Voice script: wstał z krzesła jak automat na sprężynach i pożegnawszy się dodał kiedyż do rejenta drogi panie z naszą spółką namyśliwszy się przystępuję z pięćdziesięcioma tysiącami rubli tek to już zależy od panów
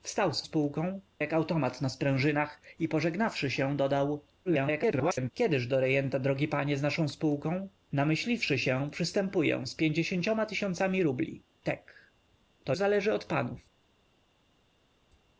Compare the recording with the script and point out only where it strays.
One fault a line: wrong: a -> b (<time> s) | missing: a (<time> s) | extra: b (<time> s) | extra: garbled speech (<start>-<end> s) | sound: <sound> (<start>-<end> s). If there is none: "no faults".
wrong: krzesła -> spółką (0.4 s)
extra: garbled speech (4.5-5.3 s)
missing: już (12.7 s)